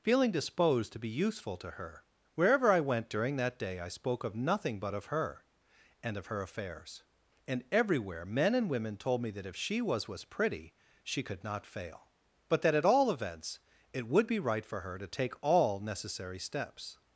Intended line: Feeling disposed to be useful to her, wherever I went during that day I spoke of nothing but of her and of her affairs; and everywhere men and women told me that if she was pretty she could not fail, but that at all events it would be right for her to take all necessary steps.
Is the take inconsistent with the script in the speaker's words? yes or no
yes